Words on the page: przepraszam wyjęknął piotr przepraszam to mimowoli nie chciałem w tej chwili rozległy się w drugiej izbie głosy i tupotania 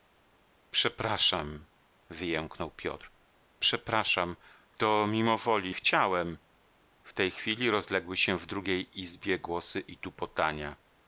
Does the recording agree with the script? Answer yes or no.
no